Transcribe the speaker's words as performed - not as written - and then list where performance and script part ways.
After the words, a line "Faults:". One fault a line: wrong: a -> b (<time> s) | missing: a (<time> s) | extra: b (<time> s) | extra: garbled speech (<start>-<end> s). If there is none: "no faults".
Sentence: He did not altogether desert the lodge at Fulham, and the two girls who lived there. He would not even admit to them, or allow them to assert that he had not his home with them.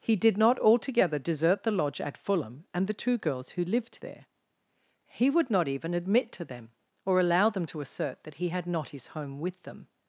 He did not altogether desert the lodge at Fulham, and the two girls who lived there. He would not even admit to them, or allow them to assert that he had not his home with them.
Faults:
no faults